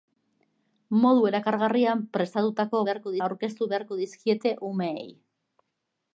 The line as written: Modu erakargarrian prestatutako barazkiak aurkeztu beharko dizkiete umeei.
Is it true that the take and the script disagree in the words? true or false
true